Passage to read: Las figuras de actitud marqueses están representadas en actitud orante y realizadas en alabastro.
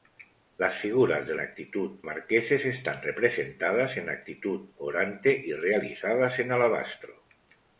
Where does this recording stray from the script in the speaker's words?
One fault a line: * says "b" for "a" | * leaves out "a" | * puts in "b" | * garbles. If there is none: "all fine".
all fine